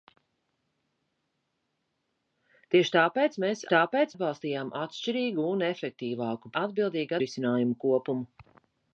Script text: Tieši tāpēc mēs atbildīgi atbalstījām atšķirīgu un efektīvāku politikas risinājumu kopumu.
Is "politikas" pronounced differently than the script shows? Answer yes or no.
yes